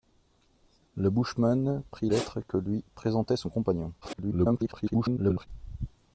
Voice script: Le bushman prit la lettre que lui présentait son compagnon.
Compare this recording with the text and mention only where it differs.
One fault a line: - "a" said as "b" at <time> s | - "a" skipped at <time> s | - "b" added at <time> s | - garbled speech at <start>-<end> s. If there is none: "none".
- "la" skipped at 2.1 s
- garbled speech at 4.0-5.5 s